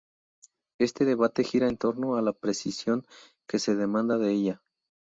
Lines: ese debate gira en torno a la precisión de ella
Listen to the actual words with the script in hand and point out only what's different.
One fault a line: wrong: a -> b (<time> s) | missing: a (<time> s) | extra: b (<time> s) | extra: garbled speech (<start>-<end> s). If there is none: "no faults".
wrong: ese -> este (0.8 s)
extra: que se demanda (3.5 s)